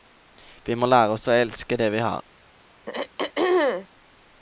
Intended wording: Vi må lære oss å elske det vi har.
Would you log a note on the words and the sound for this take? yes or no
yes